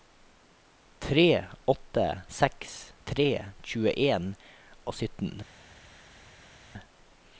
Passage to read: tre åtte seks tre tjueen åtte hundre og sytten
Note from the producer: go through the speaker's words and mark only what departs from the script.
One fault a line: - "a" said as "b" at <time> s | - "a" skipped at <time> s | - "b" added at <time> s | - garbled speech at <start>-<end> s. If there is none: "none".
- "åtte hundre" skipped at 4.3 s